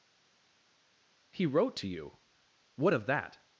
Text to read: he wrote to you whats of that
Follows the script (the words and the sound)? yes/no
no